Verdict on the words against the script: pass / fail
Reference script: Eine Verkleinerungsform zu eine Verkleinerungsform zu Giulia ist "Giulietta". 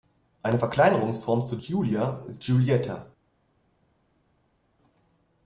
fail